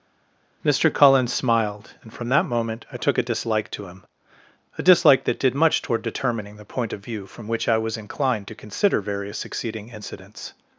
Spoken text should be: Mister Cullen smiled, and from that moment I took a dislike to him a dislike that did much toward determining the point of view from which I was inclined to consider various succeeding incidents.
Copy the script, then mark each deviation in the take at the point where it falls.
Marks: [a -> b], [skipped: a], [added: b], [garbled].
Mister Cullen smiled, and from that moment I took a dislike to him a dislike that did much toward determining the point of view from which I was inclined to consider various succeeding incidents.